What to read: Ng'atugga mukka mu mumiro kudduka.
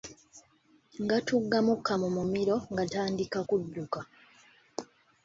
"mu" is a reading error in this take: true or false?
false